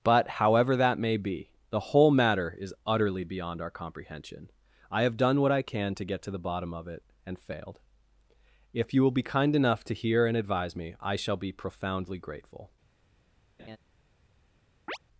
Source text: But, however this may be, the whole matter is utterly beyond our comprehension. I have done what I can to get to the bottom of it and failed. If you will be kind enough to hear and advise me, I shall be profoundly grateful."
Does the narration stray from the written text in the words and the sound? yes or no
yes